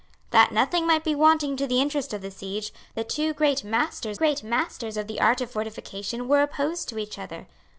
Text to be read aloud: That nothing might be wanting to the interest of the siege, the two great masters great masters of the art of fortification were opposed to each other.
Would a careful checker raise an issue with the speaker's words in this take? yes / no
no